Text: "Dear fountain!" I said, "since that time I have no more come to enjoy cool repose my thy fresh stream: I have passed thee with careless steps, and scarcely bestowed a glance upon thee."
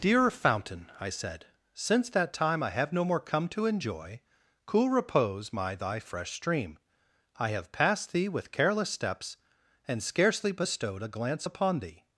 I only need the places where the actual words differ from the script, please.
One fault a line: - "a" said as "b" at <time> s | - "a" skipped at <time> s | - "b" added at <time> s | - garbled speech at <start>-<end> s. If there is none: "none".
none